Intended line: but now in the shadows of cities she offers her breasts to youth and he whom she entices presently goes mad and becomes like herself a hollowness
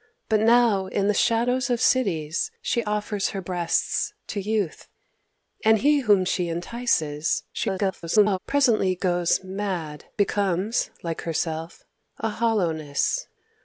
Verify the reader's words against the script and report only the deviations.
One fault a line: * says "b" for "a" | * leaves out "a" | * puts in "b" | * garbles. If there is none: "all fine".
* garbles
* leaves out "and"